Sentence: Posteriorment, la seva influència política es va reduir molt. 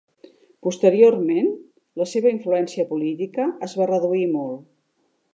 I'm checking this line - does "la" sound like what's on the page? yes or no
yes